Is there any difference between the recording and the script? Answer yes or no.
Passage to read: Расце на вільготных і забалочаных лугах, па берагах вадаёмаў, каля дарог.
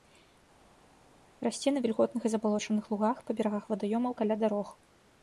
no